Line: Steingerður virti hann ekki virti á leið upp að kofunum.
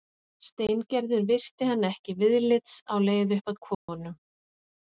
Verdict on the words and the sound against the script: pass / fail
fail